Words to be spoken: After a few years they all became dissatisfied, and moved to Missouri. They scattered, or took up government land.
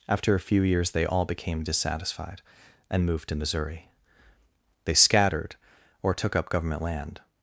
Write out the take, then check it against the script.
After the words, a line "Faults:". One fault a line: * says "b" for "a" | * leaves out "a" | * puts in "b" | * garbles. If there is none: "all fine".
After a few years they all became dissatisfied, and moved to Missouri. They scattered, or took up government land.
Faults:
all fine